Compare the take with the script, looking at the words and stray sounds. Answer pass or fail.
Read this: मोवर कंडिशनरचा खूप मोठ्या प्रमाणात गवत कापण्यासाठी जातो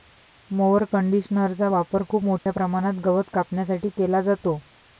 fail